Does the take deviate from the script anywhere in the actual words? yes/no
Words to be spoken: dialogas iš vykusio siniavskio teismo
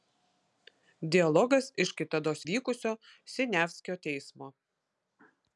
yes